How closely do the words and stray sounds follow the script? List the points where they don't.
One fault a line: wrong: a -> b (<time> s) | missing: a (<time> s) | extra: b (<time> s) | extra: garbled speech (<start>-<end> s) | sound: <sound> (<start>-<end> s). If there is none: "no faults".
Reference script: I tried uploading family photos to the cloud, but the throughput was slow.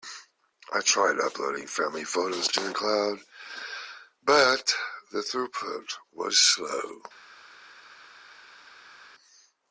no faults